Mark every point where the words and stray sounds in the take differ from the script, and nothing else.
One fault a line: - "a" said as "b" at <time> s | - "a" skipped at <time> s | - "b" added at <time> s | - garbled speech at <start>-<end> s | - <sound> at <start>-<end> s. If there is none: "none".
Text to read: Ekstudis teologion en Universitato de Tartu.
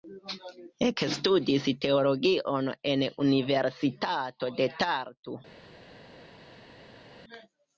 none